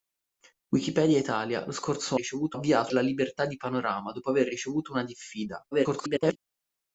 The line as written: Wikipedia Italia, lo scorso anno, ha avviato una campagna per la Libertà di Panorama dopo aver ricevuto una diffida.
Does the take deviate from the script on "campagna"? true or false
true